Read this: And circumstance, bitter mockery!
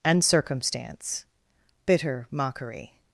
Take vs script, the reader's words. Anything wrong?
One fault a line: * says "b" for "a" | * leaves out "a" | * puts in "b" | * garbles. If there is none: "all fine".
all fine